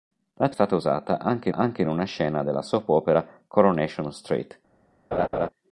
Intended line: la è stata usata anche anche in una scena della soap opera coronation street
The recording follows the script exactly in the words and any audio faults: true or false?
false